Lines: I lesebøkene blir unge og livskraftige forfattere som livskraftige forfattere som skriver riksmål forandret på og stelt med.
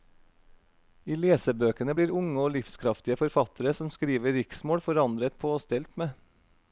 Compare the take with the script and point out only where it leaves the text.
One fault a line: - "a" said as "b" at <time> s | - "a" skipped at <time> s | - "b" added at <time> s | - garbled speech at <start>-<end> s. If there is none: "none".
- "livskraftige forfattere som" skipped at 3.9 s